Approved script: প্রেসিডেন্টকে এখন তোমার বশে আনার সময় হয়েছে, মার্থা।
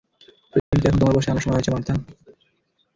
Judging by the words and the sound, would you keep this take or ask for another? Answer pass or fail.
fail